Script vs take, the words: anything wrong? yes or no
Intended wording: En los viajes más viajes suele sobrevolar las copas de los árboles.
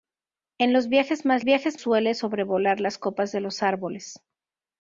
no